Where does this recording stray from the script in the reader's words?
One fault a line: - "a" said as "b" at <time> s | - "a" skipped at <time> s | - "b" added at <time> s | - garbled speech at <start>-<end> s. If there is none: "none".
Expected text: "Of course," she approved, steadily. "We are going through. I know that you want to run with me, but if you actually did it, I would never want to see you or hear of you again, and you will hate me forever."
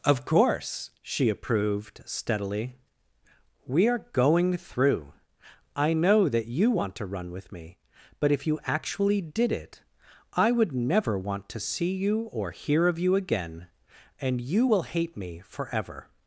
none